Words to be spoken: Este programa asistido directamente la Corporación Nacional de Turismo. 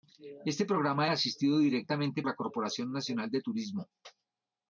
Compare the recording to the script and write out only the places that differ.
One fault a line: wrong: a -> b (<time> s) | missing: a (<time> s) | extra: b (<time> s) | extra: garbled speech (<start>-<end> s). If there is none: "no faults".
no faults